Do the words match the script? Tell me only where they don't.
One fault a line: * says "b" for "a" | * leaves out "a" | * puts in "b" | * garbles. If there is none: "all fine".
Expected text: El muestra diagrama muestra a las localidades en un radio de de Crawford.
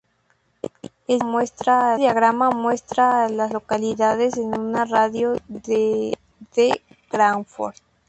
all fine